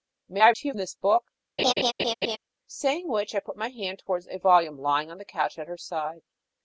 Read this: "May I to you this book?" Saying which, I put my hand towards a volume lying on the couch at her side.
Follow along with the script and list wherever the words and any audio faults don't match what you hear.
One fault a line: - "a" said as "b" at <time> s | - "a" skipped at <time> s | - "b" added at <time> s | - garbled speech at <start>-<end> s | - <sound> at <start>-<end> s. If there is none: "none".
- laugh at 1.6-2.4 s